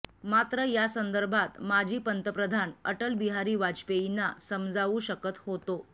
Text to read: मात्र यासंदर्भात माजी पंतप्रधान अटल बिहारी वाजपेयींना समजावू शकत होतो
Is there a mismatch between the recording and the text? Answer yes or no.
no